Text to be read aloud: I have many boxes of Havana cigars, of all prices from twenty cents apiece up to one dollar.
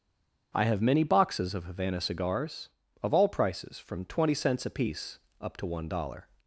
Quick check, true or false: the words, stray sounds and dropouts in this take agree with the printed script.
true